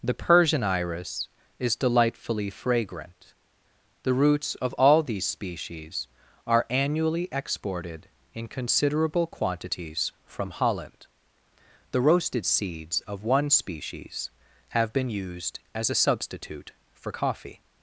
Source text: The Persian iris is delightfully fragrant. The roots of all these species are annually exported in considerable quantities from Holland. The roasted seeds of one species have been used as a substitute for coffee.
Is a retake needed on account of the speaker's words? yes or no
no